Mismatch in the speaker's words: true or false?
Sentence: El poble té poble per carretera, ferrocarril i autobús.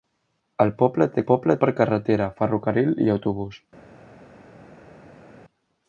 false